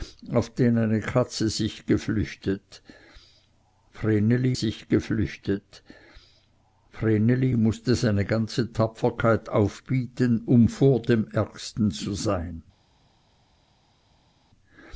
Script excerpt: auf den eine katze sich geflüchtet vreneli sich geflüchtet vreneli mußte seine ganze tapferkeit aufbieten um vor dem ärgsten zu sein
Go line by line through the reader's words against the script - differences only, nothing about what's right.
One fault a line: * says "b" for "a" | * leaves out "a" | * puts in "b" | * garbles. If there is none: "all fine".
all fine